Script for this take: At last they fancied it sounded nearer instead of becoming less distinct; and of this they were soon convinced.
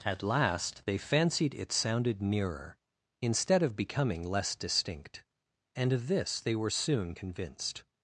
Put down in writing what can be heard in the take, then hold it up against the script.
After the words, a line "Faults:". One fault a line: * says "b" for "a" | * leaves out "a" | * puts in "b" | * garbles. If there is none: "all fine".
At last they fancied it sounded nearer instead of becoming less distinct; and of this they were soon convinced.
Faults:
all fine